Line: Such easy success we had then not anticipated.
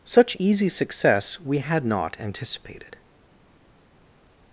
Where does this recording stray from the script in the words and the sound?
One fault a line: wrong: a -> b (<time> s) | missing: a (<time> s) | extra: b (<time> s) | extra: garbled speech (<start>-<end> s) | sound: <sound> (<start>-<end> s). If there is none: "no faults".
missing: then (1.8 s)